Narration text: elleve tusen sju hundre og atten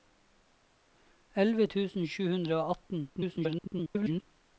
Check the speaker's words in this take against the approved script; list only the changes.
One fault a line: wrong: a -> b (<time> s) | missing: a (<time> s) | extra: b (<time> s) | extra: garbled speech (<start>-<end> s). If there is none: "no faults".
extra: garbled speech (3.1-4.2 s)